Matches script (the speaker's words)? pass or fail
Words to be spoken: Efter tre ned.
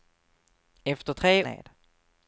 pass